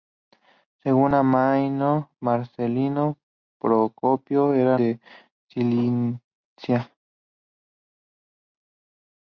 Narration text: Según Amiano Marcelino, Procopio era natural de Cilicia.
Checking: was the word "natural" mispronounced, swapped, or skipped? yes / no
yes